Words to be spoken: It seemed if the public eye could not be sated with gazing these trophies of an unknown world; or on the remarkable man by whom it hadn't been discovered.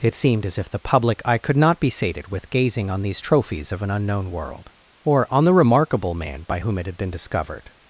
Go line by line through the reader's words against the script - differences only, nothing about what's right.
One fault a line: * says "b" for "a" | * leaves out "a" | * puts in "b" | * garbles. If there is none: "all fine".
* puts in "as"
* puts in "on"
* says "had" for "hadn't"